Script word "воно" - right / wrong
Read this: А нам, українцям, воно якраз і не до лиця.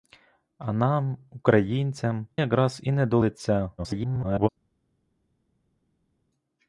wrong